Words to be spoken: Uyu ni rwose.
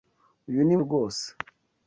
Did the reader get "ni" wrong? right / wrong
right